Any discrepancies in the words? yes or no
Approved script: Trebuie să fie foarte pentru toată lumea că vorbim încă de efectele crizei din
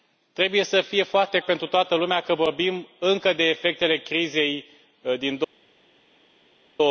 no